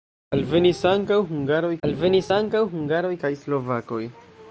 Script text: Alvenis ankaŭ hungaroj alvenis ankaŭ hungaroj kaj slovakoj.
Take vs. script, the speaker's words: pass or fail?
pass